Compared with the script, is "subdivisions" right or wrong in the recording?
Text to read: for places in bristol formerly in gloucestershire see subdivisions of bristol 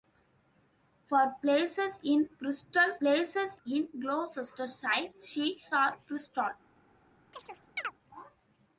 wrong